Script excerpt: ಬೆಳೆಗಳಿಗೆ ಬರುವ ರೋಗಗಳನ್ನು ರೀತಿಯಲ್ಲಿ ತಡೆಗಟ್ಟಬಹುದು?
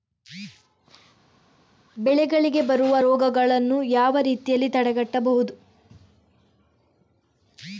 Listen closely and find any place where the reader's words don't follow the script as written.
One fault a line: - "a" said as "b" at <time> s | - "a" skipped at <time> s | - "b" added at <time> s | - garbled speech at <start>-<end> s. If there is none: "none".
- "ಯಾವ" added at 3.8 s